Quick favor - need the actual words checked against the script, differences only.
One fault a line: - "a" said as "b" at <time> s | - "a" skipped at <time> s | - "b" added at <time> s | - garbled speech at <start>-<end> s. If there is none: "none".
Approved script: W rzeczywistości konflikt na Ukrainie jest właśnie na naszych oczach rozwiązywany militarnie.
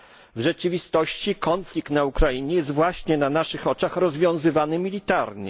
none